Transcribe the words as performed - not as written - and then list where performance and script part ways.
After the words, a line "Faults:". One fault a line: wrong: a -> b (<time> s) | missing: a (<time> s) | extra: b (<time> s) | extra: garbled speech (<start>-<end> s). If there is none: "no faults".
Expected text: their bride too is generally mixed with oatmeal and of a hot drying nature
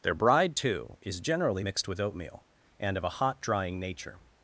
their bride too is generally mixed with oatmeal and of a hot drying nature
Faults:
no faults